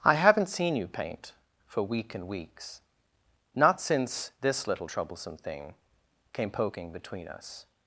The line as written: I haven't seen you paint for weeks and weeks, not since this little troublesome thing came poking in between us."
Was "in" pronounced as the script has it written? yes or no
no